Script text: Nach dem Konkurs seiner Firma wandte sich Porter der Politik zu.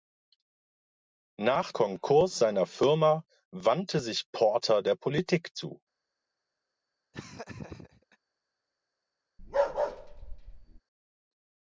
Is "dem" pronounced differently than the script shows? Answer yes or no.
yes